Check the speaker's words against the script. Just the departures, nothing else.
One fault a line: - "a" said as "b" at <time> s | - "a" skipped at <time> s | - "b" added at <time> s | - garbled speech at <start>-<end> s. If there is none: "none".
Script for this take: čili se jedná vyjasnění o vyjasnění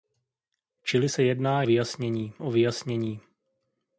none